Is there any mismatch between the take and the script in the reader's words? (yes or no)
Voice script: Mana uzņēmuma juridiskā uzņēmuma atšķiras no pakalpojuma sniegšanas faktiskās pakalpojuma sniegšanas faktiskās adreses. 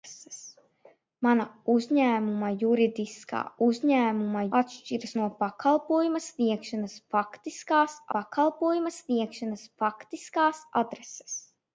no